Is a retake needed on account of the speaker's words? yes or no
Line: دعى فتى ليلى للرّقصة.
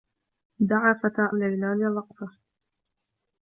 no